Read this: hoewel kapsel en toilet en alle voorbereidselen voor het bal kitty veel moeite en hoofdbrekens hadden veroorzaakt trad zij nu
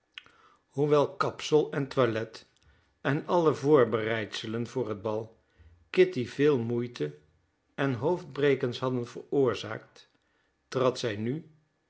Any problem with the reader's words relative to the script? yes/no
no